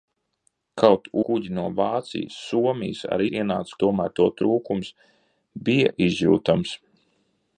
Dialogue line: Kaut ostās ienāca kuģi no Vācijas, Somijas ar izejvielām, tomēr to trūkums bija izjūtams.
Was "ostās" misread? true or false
true